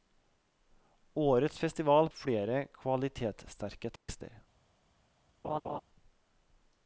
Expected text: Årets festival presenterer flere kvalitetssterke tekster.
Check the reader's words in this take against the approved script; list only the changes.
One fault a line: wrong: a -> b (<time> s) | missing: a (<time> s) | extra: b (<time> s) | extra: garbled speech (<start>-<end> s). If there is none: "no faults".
missing: presenterer (2.1 s)